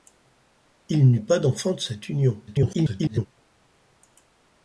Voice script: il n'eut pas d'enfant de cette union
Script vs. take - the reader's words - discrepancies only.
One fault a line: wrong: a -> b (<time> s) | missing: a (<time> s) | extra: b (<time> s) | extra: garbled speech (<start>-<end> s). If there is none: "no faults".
extra: garbled speech (2.5-3.3 s)